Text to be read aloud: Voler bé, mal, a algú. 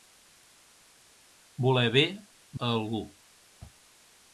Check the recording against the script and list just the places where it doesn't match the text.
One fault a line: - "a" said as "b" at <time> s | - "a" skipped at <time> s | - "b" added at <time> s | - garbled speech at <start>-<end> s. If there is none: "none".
- "mal" skipped at 2.0 s